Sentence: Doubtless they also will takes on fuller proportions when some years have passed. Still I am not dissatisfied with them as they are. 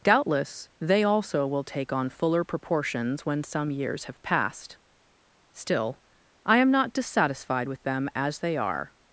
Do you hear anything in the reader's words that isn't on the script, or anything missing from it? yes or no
yes